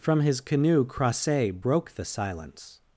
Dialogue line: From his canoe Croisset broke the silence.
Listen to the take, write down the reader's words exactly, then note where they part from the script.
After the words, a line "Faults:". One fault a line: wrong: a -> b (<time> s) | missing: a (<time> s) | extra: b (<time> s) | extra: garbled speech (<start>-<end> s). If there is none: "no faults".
From his canoe Croisset broke the silence.
Faults:
no faults